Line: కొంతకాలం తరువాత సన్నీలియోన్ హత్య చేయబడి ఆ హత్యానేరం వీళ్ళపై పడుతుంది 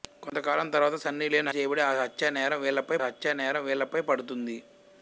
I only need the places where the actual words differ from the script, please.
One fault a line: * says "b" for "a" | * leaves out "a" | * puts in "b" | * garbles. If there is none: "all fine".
* leaves out "హత్య"
* puts in "హత్యానేరం వీళ్ళపై"